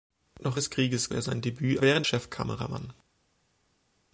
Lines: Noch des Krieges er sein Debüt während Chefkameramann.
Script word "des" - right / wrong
right